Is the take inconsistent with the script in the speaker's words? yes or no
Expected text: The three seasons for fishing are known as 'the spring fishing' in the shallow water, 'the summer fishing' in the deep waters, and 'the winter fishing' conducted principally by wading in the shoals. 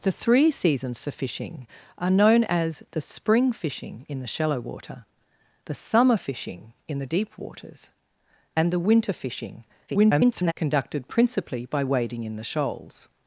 yes